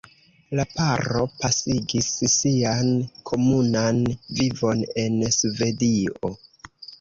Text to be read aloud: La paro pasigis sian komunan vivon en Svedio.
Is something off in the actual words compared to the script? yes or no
no